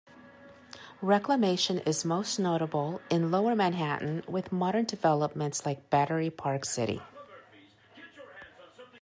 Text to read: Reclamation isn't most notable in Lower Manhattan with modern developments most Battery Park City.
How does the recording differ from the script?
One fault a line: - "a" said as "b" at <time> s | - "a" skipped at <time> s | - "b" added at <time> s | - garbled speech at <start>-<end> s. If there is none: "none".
- "isn't" said as "is" at 1.8 s
- "most" said as "like" at 5.6 s